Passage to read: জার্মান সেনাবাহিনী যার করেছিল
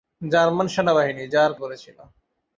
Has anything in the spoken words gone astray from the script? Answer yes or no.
no